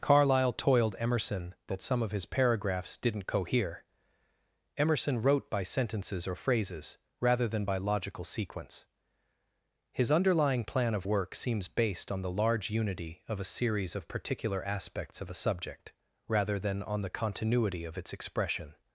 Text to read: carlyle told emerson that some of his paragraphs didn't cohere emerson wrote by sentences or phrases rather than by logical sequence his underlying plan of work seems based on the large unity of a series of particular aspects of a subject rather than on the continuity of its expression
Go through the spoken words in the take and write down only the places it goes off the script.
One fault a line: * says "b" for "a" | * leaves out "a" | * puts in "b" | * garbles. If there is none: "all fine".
* says "toiled" for "told"